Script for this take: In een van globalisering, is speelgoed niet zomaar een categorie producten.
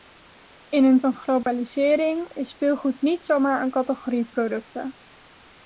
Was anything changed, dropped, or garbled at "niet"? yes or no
no